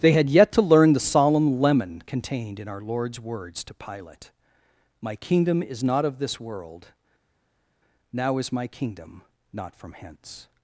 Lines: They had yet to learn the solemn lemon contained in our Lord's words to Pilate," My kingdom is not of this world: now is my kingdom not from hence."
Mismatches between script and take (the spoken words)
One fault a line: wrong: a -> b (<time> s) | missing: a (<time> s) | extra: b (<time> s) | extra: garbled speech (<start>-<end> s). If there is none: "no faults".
no faults